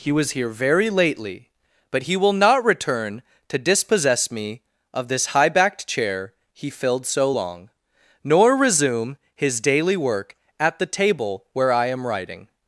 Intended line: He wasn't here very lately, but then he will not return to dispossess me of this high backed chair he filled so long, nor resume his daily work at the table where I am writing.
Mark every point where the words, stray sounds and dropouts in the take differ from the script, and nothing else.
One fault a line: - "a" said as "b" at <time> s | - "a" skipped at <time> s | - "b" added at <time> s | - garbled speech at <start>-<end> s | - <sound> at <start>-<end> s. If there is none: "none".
- "wasn't" said as "was" at 0.1 s
- "then" skipped at 2.0 s